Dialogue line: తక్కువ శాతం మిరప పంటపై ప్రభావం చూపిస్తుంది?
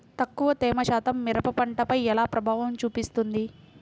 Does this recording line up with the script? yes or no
no